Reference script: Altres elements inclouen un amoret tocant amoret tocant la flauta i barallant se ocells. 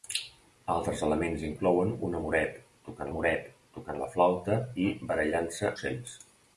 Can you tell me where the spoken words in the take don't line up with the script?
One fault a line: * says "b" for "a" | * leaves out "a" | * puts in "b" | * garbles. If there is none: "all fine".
all fine